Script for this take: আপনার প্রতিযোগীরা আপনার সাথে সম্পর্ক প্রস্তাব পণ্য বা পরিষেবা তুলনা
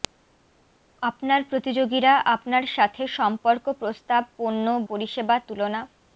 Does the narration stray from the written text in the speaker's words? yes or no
yes